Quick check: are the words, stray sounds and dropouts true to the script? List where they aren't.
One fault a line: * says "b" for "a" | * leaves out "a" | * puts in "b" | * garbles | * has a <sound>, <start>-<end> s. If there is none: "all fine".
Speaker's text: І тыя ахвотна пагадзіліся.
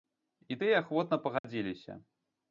* has a dropout, 1.4-1.4 s